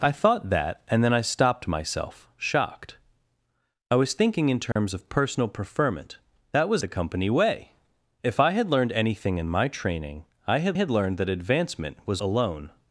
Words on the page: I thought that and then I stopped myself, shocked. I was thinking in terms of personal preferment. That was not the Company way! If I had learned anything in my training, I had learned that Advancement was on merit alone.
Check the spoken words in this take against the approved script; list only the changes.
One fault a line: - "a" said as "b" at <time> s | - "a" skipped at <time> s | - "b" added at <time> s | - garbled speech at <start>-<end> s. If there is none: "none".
- "not" skipped at 6.8 s
- "had" added at 10.7 s
- "on merit" skipped at 12.2 s